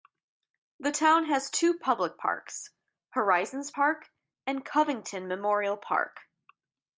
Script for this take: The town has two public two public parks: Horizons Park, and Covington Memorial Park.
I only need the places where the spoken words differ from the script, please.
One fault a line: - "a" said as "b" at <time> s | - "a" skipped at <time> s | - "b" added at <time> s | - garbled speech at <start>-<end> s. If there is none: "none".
- "two public" skipped at 2.2 s